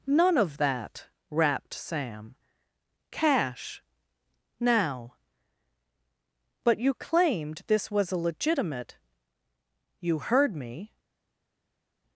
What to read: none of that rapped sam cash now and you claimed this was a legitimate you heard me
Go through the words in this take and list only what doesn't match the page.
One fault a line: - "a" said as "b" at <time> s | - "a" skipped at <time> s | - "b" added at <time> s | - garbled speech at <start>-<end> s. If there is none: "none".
- "and" said as "but" at 6.6 s